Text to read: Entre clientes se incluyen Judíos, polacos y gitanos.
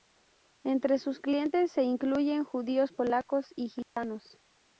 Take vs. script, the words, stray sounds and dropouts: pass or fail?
fail